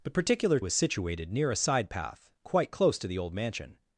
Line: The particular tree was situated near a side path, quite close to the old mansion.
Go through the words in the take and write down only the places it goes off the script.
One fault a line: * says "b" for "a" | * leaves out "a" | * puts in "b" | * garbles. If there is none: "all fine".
* leaves out "tree"